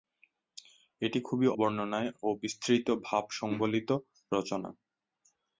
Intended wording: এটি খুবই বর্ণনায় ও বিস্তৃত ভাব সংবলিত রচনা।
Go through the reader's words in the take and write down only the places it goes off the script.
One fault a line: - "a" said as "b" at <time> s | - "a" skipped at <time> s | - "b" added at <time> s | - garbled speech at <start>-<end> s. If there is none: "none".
none